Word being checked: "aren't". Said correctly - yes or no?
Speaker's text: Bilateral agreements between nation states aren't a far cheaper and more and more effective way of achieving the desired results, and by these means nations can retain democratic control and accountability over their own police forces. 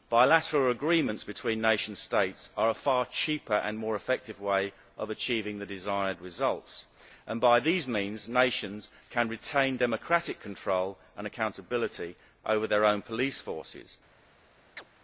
no